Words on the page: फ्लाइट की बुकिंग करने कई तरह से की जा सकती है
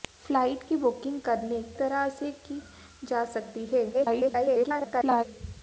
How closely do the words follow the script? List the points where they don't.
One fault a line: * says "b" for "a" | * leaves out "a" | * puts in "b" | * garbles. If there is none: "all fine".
* leaves out "कई"
* garbles